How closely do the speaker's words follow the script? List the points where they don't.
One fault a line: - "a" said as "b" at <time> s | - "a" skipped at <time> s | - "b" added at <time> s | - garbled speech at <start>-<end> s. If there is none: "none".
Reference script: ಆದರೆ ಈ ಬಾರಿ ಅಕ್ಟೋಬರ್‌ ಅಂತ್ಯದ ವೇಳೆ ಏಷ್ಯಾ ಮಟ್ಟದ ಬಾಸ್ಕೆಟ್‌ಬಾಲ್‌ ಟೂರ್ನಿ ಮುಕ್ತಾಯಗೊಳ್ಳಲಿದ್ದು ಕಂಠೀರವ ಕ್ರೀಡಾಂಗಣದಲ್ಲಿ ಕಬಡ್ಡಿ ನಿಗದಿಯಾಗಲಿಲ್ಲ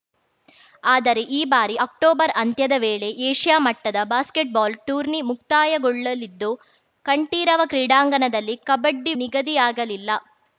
none